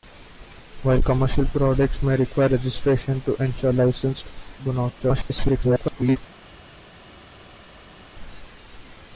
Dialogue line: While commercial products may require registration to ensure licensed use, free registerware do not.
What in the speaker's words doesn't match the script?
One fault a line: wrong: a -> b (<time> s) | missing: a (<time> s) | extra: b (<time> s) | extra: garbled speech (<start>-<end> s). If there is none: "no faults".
missing: use free registerware (4.5 s)
extra: garbled speech (5.0-6.2 s)